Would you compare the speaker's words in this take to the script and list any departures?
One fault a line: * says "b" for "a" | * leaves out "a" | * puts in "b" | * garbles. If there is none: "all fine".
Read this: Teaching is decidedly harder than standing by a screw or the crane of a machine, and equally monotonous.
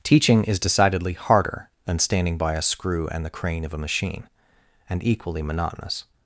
* says "and" for "or"